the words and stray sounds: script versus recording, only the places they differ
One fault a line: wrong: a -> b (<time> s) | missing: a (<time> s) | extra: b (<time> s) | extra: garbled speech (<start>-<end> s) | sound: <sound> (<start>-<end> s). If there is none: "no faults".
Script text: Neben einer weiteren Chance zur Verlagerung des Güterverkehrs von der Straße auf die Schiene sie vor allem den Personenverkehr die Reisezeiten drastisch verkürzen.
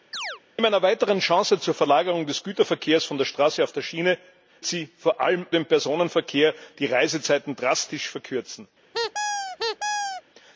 sound: chirp (0.1-0.4 s)
sound: squeak (8.9-10.2 s)